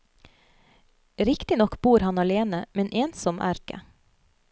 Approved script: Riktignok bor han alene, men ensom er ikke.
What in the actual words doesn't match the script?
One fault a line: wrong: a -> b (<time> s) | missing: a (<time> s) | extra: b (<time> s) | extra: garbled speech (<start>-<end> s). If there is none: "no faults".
no faults